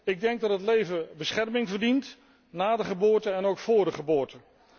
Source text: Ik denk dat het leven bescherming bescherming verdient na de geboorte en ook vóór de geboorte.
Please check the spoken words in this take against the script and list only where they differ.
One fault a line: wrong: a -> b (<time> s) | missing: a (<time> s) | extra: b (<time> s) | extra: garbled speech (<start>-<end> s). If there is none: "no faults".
missing: bescherming (1.7 s)